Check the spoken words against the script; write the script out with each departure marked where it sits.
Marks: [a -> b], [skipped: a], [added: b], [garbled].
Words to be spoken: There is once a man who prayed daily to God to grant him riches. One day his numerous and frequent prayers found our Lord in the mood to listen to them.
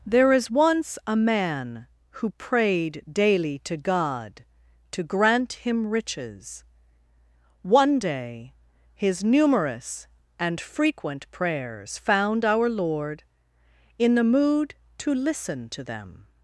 There is once a man who prayed daily to God to grant him riches. One day his numerous and frequent prayers found our Lord in the mood to listen to them.